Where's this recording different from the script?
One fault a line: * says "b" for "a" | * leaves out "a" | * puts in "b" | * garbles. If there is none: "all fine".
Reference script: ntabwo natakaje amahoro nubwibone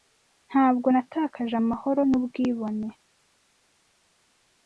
all fine